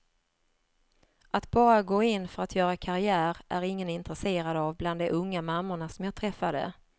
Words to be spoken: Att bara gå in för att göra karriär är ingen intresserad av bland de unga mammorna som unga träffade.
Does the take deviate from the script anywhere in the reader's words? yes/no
yes